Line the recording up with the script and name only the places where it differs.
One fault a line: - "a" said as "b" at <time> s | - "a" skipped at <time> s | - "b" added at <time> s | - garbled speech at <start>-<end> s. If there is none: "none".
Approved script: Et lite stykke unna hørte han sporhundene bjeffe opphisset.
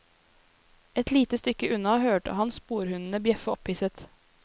none